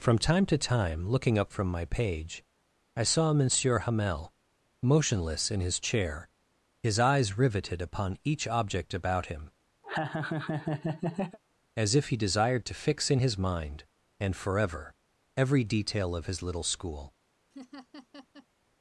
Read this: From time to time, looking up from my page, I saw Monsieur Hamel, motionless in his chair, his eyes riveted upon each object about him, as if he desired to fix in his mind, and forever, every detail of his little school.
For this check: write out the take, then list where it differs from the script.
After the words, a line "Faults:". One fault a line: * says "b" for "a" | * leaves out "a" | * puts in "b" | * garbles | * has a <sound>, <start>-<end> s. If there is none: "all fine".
From time to time, looking up from my page, I saw Monsieur Hamel, motionless in his chair, his eyes riveted upon each object about him, as if he desired to fix in his mind, and forever, every detail of his little school.
Faults:
* has a laugh, 9.8-11.4 s
* has a laugh, 17.5-18.5 s